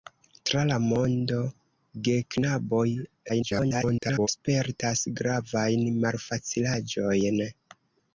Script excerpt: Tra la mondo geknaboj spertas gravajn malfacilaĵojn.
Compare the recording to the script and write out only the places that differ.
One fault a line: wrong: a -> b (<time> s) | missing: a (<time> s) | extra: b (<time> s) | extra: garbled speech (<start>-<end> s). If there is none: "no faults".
extra: garbled speech (3.3-4.3 s)